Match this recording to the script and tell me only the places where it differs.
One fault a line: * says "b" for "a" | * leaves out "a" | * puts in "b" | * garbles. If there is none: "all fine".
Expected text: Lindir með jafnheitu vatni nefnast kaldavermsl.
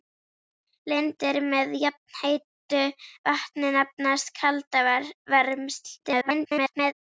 * garbles